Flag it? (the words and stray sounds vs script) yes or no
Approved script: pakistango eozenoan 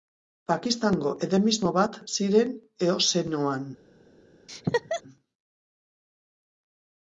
yes